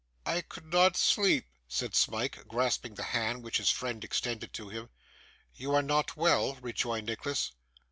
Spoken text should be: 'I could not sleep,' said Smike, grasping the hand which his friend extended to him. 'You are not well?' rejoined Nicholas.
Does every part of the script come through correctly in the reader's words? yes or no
yes